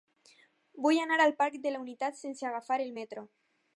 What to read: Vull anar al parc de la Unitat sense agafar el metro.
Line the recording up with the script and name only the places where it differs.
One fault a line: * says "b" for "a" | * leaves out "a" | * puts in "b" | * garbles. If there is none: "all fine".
all fine